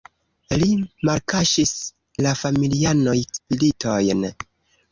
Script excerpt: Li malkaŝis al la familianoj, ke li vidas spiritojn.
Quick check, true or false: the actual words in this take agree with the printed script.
false